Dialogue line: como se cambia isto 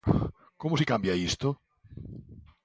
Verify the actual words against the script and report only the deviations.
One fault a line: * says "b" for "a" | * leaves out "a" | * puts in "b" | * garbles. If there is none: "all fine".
all fine